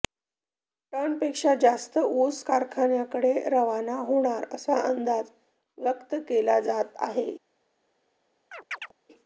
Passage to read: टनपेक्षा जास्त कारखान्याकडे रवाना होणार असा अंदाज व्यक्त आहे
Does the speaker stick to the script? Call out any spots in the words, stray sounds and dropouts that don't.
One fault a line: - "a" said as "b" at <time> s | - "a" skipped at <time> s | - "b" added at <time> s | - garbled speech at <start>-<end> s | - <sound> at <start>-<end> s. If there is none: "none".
- "ऊस" added at 2.0 s
- "केला जात" added at 6.3 s
- chirp at 8.5-8.9 s